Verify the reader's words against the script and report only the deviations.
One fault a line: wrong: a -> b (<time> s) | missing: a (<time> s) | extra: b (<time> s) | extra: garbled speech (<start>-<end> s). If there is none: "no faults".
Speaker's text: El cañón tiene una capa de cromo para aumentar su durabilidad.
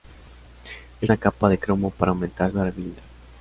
missing: cañón tiene (1.1 s)
missing: su (2.5 s)